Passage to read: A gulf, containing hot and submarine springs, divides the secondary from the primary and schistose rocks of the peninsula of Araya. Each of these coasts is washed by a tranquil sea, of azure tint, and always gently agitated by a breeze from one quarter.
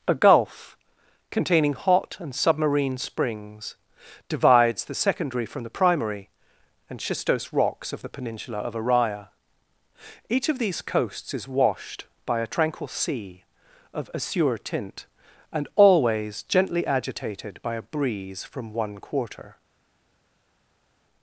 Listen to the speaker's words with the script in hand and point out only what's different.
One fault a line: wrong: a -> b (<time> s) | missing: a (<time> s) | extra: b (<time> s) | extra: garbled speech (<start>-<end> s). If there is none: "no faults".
no faults